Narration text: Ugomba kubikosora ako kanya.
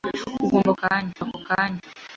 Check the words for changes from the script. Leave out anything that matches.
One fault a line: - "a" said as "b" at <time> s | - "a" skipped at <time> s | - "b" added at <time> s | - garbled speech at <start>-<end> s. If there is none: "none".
- "kubikosora" said as "kanya" at 0.8 s